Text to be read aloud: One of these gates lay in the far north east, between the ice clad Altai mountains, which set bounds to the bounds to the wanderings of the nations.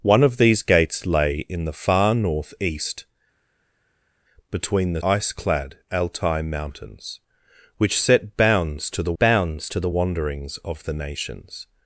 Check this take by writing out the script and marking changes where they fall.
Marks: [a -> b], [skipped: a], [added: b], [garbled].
One of these gates lay in the far north east, between the ice clad Altai mountains, which set bounds to the bounds to the wanderings of the nations.